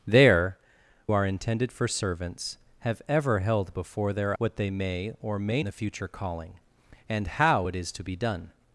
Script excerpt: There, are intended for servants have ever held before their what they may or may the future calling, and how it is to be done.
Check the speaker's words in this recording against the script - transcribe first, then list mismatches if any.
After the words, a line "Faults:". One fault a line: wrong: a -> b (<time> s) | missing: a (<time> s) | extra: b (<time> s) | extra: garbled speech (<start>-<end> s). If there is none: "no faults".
There, are intended for servants have ever held before their what they may or may the future calling, and how it is to be done.
Faults:
no faults